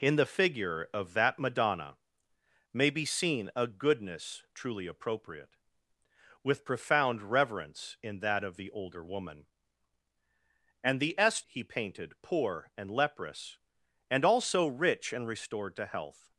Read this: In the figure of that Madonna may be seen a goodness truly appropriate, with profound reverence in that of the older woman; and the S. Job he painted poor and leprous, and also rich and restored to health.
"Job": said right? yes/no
no